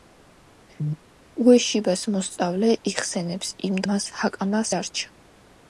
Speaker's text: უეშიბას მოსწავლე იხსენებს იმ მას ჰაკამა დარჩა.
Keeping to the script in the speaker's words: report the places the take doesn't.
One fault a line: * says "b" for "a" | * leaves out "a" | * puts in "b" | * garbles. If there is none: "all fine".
all fine